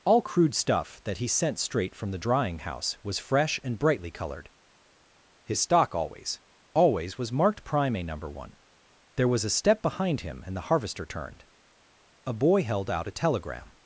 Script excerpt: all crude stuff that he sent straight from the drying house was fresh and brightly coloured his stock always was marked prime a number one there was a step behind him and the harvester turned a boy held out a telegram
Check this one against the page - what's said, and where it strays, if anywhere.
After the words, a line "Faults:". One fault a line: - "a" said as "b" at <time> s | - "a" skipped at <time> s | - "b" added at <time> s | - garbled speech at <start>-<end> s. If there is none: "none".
all crude stuff that he sent straight from the drying house was fresh and brightly coloured his stock always always was marked prime a number one there was a step behind him and the harvester turned a boy held out a telegram
Faults:
- "always" added at 6.7 s